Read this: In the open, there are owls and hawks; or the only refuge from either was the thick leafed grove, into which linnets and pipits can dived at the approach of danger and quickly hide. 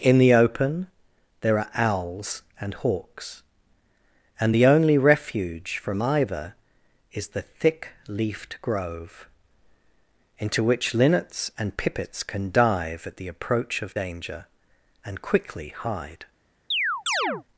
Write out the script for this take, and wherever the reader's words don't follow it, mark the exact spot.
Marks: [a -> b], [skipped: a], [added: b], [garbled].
In the open, there are owls and hawks; [or -> and] the only refuge from either [was -> is] the thick leafed grove, into which linnets and pipits can [dived -> dive] at the approach of danger and quickly hide.